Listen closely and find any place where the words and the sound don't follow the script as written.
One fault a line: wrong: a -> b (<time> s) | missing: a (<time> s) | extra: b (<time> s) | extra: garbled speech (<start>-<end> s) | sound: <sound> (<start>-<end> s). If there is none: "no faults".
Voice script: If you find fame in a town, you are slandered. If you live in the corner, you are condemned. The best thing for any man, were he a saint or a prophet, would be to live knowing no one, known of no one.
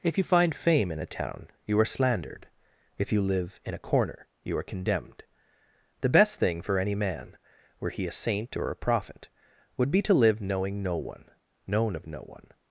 wrong: the -> a (3.8 s)